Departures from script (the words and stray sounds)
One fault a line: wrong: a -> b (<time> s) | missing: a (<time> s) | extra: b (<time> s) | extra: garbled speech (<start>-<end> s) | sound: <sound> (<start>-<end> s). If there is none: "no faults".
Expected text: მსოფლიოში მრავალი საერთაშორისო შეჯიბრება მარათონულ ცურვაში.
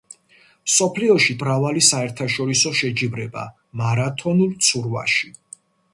no faults